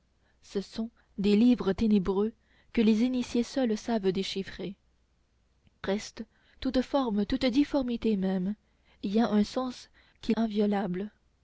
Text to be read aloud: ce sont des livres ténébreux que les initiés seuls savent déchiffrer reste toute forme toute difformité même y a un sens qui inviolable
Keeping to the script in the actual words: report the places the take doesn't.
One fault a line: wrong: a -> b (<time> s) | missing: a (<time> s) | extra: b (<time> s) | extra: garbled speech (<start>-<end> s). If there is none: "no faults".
no faults